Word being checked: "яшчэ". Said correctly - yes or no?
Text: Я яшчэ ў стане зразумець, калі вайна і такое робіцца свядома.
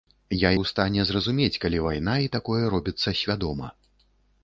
no